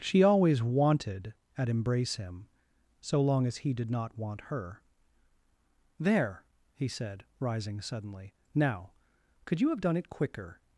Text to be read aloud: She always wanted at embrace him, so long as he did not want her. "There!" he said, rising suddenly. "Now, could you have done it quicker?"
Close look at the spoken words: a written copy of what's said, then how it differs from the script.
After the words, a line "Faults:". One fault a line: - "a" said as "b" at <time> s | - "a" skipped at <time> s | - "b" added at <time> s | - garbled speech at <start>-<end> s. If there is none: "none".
She always wanted at embrace him, so long as he did not want her. "There!" he said, rising suddenly. "Now, could you have done it quicker?"
Faults:
none